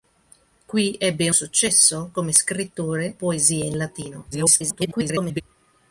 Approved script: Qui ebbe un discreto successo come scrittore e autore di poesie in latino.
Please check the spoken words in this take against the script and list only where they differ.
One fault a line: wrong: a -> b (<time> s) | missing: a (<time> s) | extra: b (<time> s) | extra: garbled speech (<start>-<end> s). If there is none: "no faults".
missing: un discreto (1.3 s)
missing: e autore di (3.2 s)
extra: garbled speech (4.3-5.4 s)